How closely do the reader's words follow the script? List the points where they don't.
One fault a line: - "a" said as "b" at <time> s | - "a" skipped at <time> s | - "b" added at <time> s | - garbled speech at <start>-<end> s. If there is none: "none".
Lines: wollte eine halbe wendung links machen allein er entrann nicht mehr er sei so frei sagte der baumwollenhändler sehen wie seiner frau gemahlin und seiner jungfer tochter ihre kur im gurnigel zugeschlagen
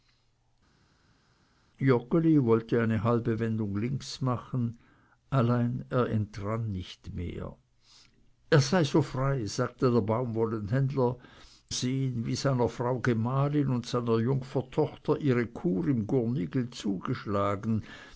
none